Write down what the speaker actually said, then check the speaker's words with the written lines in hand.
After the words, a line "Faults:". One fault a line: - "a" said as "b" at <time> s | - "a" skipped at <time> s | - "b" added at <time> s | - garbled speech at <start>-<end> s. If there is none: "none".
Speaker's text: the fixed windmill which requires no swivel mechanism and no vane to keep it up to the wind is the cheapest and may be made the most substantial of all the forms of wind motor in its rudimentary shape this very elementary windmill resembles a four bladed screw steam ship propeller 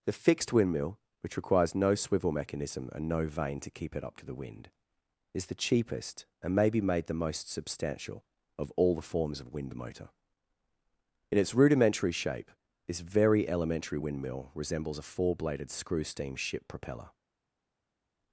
the fixed windmill which requires no swivel mechanism and no vane to keep it up to the wind is the cheapest and may be made the most substantial of all the forms of wind motor in its rudimentary shape this very elementary windmill resembles a four bladed screw steam ship propeller
Faults:
none